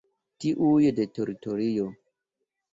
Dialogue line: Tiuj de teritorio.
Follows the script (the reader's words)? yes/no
yes